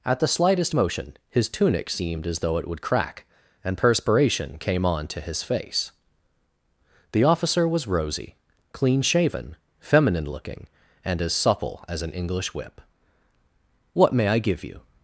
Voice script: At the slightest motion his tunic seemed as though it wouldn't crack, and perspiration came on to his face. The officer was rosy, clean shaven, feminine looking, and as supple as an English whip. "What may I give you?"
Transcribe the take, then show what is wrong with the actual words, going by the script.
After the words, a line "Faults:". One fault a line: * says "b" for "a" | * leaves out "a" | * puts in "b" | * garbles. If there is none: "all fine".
At the slightest motion his tunic seemed as though it would crack, and perspiration came on to his face. The officer was rosy, clean shaven, feminine looking, and as supple as an English whip. "What may I give you?"
Faults:
* says "would" for "wouldn't"